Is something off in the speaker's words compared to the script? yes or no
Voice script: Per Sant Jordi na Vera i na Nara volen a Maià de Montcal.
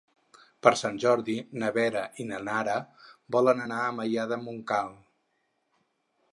yes